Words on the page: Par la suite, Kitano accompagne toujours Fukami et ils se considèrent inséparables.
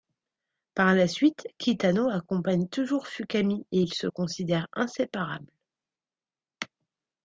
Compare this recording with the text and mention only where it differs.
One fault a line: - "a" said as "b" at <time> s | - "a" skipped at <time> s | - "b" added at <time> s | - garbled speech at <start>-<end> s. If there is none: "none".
none